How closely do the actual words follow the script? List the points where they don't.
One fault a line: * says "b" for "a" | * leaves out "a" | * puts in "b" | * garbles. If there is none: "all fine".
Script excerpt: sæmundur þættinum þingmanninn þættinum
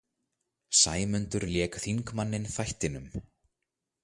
* says "lék" for "þættinum"